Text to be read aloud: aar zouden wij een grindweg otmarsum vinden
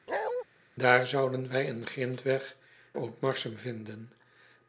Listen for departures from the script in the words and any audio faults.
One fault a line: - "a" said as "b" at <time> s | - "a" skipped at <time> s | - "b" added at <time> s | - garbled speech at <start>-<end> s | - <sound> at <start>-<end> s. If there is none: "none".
- bark at 0.1-0.4 s